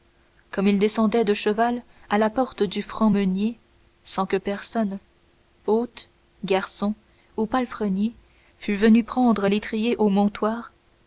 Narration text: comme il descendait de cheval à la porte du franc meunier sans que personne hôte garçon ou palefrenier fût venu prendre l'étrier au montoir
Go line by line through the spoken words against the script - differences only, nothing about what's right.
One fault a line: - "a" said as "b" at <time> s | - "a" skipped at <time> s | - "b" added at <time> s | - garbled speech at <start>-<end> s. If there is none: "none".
none